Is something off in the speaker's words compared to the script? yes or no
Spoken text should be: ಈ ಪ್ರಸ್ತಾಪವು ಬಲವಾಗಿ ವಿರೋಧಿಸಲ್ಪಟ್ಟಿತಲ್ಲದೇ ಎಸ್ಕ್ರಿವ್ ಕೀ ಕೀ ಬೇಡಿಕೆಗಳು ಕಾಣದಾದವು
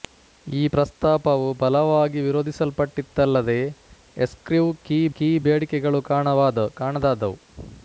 no